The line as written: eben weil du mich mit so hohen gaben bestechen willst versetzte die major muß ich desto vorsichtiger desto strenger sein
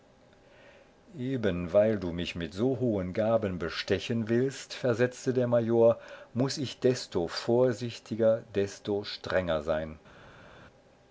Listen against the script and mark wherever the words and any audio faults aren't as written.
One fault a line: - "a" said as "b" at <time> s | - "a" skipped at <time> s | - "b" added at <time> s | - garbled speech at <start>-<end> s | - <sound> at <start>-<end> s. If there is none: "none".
- "die" said as "der" at 5.3 s